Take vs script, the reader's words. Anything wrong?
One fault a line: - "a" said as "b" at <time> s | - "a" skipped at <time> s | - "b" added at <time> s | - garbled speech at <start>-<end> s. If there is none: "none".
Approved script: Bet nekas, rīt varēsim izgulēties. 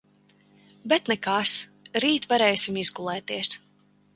none